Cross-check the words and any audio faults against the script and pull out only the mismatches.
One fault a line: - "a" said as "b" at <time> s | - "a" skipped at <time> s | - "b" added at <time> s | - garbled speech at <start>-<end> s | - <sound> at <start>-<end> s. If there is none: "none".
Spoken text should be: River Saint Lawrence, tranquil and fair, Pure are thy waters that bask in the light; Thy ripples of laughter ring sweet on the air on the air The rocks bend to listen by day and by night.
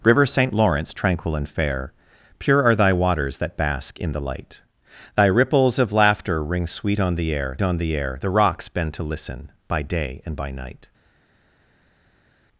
none